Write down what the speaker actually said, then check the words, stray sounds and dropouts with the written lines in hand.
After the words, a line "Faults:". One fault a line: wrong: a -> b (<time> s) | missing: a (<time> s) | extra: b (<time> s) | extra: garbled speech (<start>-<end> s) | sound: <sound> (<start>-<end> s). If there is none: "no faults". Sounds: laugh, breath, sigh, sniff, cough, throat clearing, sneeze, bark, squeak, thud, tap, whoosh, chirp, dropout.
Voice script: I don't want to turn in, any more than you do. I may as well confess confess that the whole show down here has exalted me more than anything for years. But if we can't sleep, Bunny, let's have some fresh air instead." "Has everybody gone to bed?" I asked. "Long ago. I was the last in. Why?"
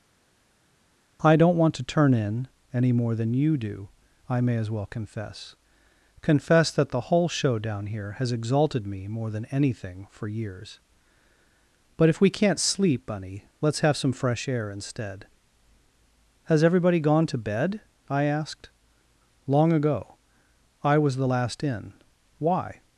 I don't want to turn in, any more than you do. I may as well confess confess that the whole show down here has exalted me more than anything for years. But if we can't sleep, Bunny, let's have some fresh air instead." "Has everybody gone to bed?" I asked. "Long ago. I was the last in. Why?"
Faults:
no faults